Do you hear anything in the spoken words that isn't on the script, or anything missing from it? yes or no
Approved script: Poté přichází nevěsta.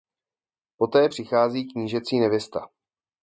yes